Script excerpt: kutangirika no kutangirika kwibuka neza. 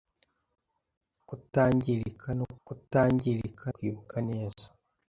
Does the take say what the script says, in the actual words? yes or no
yes